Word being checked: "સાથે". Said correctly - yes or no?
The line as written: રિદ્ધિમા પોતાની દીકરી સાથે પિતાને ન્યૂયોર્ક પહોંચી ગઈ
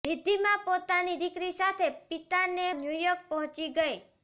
yes